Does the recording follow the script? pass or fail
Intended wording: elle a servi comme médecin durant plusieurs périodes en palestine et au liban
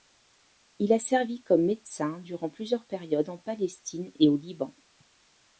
fail